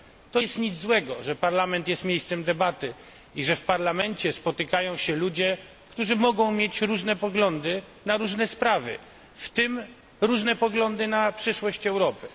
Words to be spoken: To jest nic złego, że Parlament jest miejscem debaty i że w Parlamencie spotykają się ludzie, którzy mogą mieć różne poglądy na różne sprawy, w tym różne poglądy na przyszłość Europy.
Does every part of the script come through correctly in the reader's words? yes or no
yes